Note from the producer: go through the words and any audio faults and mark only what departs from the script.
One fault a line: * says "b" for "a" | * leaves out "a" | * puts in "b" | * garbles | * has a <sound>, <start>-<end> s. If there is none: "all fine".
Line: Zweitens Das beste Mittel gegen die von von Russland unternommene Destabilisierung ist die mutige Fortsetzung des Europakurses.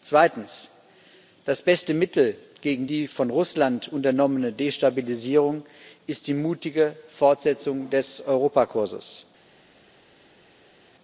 * leaves out "von"